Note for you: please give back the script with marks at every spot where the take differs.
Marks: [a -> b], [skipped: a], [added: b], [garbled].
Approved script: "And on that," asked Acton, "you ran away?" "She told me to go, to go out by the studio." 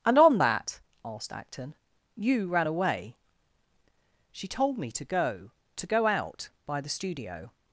"And on that," asked Acton, "you ran away?" "She told me to go, to go out by the studio."